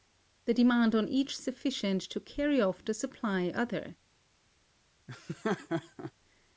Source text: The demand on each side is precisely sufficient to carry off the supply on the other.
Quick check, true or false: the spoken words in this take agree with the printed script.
false